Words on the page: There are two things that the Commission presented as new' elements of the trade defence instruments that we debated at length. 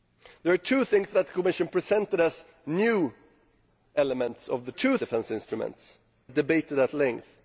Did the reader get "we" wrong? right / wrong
wrong